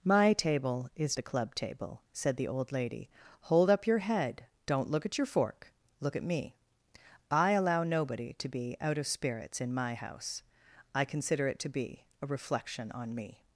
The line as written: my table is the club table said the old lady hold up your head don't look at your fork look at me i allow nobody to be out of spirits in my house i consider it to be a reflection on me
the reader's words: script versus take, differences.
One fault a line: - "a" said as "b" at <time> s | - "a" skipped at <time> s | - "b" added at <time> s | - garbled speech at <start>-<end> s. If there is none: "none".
none